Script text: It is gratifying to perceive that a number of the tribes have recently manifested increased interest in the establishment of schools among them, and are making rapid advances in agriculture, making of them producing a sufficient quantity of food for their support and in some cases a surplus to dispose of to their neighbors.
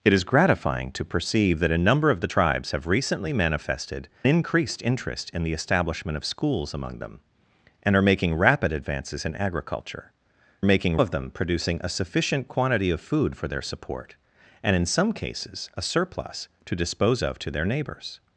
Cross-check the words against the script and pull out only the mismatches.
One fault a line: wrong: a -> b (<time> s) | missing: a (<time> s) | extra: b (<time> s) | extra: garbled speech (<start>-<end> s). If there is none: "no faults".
no faults